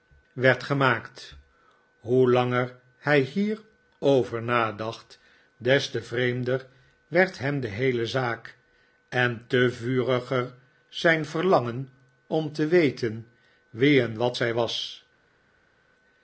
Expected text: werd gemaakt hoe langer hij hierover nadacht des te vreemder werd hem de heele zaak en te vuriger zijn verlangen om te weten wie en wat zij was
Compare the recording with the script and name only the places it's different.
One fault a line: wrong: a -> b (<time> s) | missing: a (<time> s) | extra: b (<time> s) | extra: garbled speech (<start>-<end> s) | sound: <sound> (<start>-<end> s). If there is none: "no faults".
no faults